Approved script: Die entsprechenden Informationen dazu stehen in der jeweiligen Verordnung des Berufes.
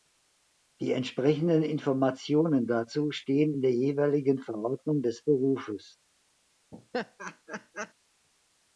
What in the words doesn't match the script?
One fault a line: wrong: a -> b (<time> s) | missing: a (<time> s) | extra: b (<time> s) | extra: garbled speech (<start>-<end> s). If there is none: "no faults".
no faults